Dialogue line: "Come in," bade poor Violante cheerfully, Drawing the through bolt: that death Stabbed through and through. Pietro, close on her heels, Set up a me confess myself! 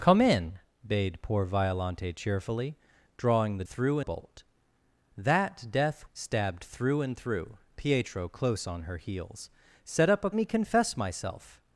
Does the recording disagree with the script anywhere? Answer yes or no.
no